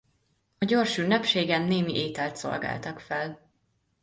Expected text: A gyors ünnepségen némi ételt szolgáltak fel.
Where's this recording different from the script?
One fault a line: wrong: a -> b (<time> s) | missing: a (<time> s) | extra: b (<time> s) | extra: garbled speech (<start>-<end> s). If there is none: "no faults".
no faults